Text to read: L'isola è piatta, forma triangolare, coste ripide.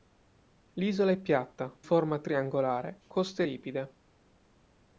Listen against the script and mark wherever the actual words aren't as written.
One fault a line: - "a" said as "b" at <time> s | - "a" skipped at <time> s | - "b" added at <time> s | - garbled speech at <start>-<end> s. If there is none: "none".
none